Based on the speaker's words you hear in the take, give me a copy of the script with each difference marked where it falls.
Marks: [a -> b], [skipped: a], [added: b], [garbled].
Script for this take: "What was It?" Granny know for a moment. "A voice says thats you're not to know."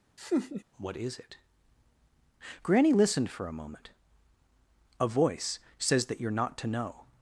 "What [was -> is] It?" Granny [know -> listened] for a moment. "A voice says [thats -> that] you're not to know."